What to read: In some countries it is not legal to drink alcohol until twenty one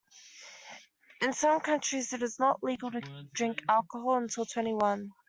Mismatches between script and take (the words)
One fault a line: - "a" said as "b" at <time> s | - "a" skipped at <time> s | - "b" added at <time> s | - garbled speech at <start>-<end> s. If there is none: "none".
none